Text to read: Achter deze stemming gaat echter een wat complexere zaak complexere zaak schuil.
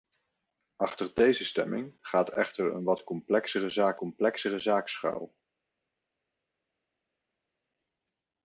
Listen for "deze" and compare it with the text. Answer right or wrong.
right